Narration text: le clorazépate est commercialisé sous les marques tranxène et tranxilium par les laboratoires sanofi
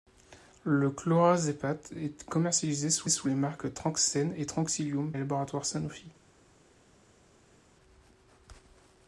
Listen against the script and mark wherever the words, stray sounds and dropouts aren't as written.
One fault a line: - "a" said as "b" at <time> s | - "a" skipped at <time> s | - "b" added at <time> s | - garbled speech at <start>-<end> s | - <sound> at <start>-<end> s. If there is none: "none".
- "sous" added at 3.1 s
- "par" skipped at 5.1 s